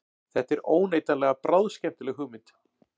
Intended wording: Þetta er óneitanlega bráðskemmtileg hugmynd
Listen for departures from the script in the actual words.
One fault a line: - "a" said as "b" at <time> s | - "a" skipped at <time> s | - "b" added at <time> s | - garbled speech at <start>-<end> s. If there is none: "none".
none